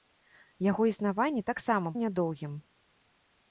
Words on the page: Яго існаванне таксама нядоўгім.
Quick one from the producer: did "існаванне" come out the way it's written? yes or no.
yes